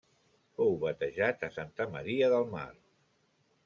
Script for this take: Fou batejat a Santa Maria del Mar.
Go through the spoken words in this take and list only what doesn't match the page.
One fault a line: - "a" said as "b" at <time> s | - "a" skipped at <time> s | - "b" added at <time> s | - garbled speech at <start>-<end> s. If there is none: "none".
none